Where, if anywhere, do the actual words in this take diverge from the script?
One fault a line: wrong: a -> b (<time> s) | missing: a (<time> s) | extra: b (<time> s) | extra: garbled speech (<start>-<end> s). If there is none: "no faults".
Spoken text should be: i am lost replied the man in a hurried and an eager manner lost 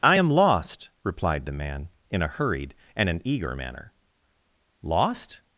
no faults